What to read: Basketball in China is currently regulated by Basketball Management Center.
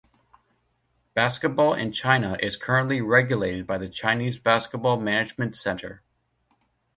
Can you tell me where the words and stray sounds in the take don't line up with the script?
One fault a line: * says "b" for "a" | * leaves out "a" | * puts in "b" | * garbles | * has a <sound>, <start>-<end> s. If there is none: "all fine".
* puts in "the Chinese"